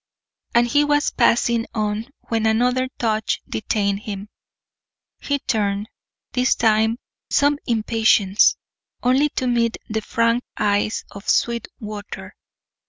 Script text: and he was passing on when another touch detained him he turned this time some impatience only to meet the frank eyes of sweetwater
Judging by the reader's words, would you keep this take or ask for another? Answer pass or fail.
pass